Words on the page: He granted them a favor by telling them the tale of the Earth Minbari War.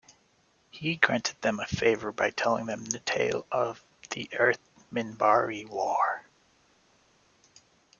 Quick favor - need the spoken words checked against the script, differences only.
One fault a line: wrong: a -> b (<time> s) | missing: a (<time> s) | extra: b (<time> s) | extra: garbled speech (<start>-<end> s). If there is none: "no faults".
no faults